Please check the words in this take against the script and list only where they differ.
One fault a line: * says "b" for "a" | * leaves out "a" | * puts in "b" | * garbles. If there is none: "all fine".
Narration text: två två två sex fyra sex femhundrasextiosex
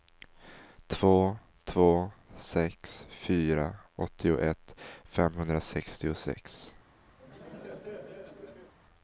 * leaves out "två"
* says "åttioett" for "sex"